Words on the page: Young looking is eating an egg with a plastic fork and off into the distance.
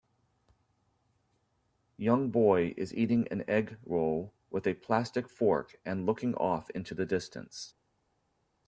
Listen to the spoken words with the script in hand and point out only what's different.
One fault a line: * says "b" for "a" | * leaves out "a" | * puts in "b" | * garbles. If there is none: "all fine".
* says "boy" for "looking"
* puts in "roll"
* puts in "looking"